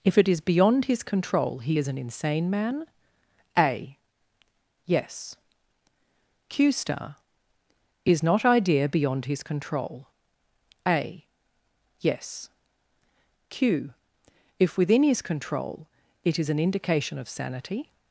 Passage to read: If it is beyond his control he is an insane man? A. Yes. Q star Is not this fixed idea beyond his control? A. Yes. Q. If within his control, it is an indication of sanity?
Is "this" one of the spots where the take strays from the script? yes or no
yes